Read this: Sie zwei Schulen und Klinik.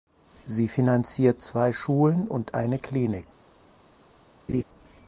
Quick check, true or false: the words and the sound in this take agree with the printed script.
false